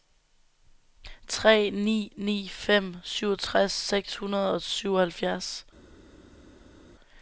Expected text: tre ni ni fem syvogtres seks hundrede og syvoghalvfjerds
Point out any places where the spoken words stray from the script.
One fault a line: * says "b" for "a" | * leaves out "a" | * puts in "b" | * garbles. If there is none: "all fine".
all fine